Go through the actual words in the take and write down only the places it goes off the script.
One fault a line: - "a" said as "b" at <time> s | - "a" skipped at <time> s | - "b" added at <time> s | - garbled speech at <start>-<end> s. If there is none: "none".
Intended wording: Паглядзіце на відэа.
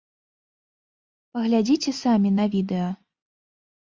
- "самі" added at 2.0 s